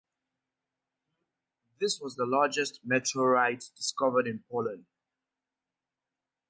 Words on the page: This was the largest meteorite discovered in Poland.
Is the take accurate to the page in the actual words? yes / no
yes